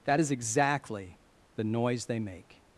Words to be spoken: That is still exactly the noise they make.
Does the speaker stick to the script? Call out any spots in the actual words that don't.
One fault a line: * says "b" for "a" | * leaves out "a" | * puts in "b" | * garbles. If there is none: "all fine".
* leaves out "still"